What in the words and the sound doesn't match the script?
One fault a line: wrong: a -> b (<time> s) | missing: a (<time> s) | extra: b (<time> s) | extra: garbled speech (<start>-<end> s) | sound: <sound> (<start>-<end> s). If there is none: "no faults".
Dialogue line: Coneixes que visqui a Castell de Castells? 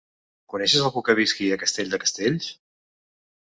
extra: algú (0.9 s)